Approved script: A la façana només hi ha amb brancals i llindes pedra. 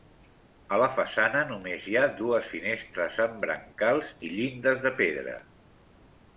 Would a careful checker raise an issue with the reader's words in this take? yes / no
yes